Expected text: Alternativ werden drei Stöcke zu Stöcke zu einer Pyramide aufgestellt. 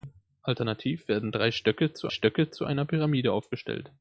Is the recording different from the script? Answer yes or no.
no